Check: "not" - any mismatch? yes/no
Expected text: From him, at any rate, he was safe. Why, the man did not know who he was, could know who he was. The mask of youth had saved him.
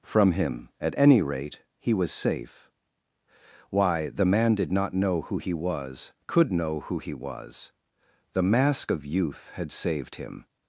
no